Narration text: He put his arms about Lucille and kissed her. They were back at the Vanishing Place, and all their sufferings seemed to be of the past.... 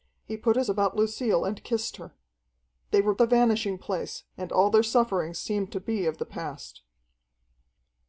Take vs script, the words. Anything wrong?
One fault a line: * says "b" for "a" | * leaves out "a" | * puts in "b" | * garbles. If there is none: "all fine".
* leaves out "arms"
* leaves out "back at"